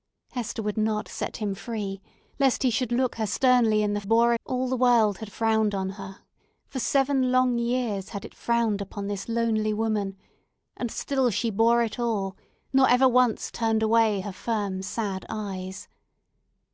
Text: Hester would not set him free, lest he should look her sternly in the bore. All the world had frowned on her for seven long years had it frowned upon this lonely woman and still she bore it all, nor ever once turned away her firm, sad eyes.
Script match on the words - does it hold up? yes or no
yes